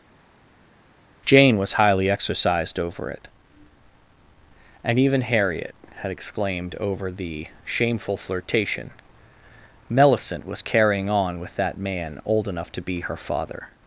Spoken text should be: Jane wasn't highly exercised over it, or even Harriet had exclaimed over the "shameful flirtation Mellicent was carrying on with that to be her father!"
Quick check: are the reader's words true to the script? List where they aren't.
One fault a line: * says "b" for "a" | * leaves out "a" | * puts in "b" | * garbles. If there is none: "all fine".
* says "was" for "wasn't"
* says "and" for "or"
* puts in "man old enough"